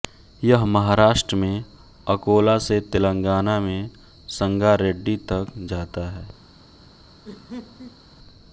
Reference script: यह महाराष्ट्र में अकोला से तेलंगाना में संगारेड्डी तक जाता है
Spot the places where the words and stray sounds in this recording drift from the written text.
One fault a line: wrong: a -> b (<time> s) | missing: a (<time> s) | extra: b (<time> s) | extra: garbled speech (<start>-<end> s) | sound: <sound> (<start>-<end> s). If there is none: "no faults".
sound: laugh (7.2-8.0 s)